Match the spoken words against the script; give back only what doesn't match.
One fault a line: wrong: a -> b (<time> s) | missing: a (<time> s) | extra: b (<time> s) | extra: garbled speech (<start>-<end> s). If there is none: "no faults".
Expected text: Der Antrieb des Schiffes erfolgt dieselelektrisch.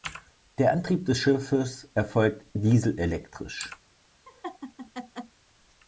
no faults